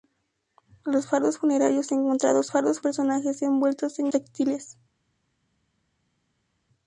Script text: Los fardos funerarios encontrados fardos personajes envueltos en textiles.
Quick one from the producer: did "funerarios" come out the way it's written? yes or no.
yes